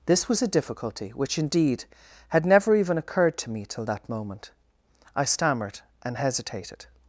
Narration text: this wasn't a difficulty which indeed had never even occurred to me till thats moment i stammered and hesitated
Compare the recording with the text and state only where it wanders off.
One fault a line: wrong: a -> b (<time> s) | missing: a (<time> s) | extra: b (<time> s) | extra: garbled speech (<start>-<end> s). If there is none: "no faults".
wrong: wasn't -> was (0.3 s)
wrong: thats -> that (3.9 s)